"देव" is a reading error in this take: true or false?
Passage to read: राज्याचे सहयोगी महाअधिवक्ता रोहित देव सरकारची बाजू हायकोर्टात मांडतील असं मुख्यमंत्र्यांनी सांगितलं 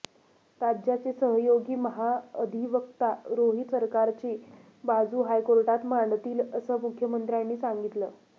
true